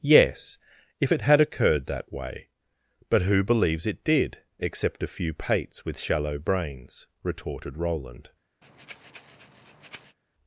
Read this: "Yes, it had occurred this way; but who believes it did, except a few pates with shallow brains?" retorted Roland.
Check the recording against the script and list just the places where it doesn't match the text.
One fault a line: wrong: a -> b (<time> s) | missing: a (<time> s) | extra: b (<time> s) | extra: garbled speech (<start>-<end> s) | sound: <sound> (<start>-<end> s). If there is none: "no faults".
extra: if (1.0 s)
wrong: this -> that (1.9 s)
sound: breath (8.6-10.2 s)